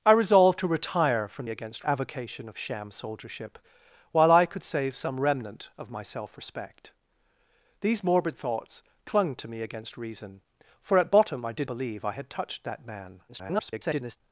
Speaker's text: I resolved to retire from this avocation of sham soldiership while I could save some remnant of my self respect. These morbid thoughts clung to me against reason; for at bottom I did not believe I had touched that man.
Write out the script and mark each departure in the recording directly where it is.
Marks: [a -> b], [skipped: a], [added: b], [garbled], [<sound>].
I resolved to retire from [this -> against] avocation of sham soldiership while I could save some remnant of my self respect. These morbid thoughts clung to me against reason; for at bottom I did [skipped: not] believe I had touched that man. [garbled]